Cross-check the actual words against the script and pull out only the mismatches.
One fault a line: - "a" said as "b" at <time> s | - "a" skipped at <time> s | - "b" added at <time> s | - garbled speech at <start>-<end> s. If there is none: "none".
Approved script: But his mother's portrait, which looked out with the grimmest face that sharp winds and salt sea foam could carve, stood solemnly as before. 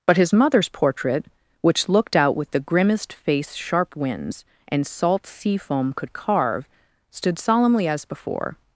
- "that" skipped at 3.5 s